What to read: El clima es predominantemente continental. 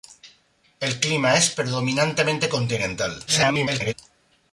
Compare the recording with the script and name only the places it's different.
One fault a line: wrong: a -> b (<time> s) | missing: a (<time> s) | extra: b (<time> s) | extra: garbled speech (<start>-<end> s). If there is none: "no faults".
extra: garbled speech (3.3-3.9 s)